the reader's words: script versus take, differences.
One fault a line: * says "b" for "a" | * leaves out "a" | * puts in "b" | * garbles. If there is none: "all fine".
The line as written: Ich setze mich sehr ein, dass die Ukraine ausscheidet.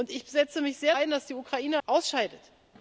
all fine